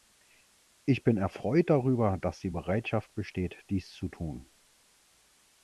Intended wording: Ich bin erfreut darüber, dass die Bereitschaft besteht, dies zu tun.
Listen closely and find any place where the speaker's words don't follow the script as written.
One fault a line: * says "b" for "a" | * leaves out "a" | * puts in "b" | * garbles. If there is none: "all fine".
all fine